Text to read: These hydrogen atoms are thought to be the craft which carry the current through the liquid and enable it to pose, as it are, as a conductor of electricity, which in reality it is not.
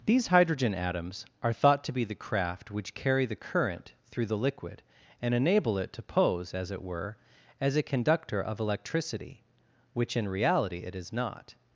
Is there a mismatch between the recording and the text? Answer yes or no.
yes